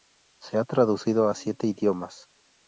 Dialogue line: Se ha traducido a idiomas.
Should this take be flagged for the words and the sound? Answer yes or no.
yes